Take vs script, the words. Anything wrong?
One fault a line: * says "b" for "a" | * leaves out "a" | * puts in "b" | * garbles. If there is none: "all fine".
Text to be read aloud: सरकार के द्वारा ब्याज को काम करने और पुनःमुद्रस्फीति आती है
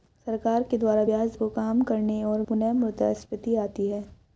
all fine